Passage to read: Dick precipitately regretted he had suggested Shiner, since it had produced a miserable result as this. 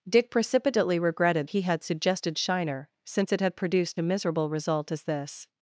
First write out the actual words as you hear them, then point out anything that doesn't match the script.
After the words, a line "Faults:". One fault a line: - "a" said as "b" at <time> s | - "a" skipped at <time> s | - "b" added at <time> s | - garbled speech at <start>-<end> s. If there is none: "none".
Dick precipitately regretted he had suggested Shiner, since it had produced a miserable result as this.
Faults:
none